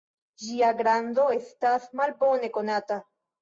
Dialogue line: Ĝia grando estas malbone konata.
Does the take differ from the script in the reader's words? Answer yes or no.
no